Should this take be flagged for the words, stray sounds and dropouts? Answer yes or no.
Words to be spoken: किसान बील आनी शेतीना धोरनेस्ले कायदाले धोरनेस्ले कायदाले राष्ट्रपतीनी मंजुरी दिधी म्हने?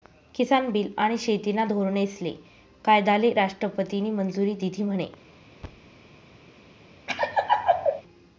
yes